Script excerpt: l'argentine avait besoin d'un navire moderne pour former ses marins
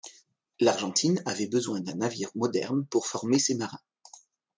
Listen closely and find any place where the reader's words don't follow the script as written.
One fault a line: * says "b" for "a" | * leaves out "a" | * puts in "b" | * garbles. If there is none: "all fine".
all fine